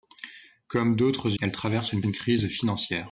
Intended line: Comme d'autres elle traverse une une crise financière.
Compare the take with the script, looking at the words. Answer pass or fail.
pass